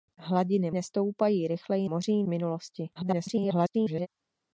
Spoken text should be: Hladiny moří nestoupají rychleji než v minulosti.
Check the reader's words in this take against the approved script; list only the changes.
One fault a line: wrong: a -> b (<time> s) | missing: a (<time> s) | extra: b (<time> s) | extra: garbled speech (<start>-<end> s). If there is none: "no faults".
missing: moří (0.7 s)
wrong: než -> moří (1.8 s)
extra: garbled speech (2.9-4.1 s)